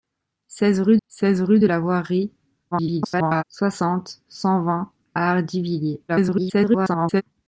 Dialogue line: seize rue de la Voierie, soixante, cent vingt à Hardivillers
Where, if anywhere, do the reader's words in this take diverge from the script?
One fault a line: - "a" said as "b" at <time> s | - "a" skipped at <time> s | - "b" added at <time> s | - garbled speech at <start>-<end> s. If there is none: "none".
- "seize rue" added at 1.1 s
- garbled speech at 2.7-3.4 s
- garbled speech at 6.1-7.2 s